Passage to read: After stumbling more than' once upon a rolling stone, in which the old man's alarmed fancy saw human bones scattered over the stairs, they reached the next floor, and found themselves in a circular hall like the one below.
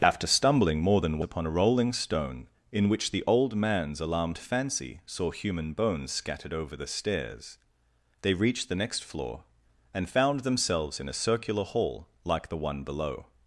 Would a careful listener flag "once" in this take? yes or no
yes